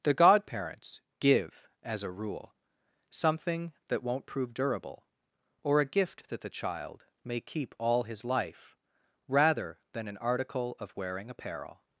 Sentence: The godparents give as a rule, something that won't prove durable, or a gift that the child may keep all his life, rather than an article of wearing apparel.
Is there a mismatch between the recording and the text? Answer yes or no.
no